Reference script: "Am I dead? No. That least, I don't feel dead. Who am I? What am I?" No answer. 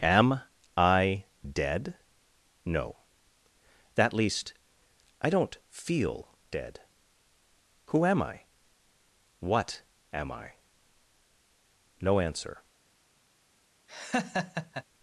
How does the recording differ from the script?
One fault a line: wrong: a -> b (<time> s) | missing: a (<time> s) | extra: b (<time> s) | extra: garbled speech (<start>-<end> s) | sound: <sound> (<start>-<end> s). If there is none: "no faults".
sound: laugh (13.9-14.8 s)